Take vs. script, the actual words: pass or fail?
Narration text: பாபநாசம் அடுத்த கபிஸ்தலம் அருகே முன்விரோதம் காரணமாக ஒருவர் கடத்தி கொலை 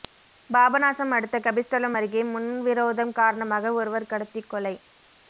pass